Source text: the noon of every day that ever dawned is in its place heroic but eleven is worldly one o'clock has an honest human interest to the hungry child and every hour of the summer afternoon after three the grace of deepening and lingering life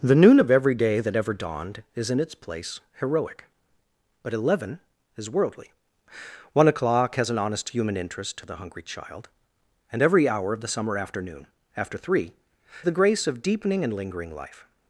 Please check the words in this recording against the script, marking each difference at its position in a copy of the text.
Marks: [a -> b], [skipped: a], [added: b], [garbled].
the noon of every day that ever dawned is in its place heroic but eleven is worldly one o'clock has an honest human interest to the hungry child and every hour of the summer afternoon after three the grace of deepening and lingering life